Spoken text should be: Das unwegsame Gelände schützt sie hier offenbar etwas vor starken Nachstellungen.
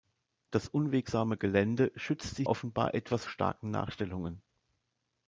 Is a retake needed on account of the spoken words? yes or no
yes